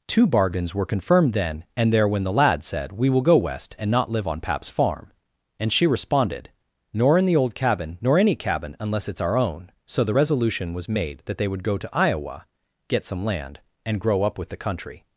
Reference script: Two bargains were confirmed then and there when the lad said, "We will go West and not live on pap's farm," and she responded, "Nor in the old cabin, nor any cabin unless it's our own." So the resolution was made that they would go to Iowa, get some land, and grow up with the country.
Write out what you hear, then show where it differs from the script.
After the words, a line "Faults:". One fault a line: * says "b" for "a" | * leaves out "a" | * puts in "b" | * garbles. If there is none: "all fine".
Two bargains were confirmed then and there when the lad said, "We will go West and not live on pap's farm," and she responded, "Nor in the old cabin, nor any cabin unless it's our own." So the resolution was made that they would go to Iowa, get some land, and grow up with the country.
Faults:
all fine